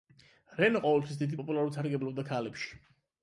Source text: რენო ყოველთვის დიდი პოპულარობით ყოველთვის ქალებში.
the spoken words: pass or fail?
fail